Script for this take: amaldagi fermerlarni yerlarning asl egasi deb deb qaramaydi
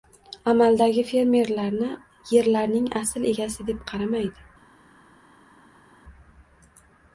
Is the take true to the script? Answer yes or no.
no